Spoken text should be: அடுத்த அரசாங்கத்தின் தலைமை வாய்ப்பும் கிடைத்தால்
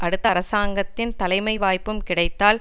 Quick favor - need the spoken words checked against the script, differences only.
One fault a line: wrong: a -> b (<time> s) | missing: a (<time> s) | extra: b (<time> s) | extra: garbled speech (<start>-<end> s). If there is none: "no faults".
no faults